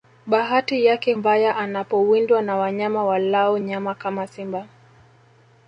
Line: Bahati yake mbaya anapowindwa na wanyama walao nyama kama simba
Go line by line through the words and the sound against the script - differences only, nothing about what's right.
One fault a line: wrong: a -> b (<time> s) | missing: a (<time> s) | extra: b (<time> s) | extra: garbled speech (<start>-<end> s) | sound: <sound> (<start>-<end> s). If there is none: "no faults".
no faults